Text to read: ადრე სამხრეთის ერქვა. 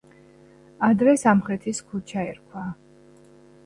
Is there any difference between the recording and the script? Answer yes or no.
yes